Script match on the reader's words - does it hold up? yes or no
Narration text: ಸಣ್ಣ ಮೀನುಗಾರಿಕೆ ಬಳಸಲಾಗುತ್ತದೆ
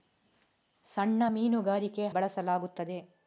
yes